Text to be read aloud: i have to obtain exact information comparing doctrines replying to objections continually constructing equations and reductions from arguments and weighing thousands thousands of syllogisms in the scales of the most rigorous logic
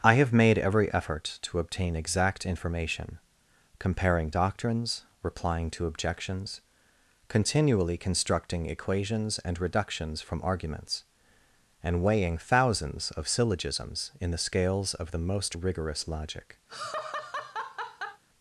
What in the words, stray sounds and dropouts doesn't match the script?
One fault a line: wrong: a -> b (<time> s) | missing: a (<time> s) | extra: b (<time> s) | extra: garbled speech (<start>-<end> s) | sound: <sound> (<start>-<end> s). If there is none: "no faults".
extra: made every effort (0.3 s)
missing: thousands (13.1 s)
sound: laugh (16.7-18.2 s)